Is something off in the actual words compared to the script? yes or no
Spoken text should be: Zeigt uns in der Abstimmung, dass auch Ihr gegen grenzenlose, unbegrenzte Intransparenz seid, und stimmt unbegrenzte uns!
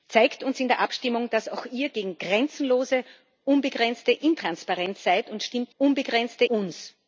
no